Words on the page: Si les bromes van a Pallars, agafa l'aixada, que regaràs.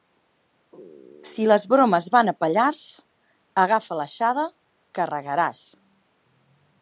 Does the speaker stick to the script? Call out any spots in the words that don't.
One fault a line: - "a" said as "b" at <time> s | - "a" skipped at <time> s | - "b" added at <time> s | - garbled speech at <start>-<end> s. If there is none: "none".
none